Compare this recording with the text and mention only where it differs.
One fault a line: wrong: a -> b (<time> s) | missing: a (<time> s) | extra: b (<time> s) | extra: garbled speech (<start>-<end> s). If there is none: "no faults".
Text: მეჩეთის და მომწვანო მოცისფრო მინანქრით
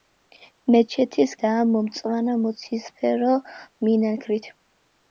no faults